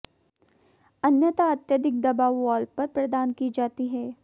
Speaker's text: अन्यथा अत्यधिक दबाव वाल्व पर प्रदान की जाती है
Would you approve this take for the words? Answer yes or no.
yes